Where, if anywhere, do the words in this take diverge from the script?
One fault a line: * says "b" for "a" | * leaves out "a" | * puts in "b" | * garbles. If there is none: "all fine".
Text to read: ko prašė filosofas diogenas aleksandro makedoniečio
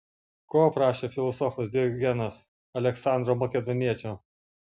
all fine